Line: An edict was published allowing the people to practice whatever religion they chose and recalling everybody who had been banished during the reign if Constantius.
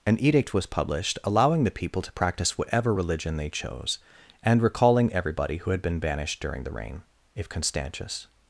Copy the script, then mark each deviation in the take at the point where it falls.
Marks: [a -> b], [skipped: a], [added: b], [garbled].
An edict was published allowing the people to practice whatever religion they chose and recalling everybody who had been banished during the reign if Constantius.